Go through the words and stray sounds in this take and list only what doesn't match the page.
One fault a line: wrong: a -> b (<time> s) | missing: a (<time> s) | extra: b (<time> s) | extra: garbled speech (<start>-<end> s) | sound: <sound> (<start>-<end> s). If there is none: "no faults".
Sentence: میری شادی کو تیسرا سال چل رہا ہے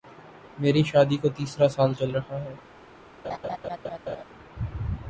sound: laugh (3.2-4.2 s)